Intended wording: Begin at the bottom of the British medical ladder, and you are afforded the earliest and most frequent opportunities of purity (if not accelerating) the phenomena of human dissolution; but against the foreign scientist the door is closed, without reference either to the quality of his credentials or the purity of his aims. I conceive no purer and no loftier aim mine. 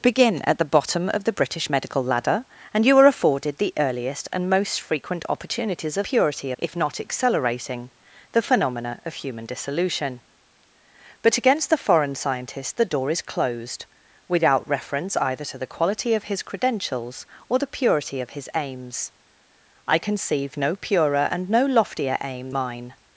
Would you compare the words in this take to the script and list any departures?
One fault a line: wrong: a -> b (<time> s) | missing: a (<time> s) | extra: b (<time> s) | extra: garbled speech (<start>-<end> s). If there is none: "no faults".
no faults